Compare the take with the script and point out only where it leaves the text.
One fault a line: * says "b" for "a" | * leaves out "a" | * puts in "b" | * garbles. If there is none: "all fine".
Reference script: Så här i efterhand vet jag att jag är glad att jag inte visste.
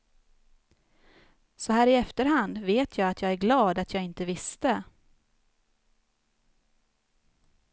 all fine